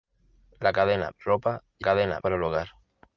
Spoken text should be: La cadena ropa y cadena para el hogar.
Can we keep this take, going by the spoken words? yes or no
yes